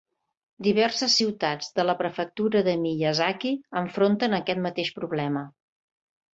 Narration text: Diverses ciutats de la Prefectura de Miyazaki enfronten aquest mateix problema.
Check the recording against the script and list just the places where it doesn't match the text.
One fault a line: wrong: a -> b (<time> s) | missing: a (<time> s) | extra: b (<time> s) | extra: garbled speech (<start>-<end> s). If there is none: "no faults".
no faults